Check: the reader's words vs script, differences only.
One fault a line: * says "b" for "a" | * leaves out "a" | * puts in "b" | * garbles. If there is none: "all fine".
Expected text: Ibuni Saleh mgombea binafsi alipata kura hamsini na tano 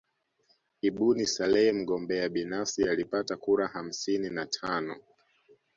all fine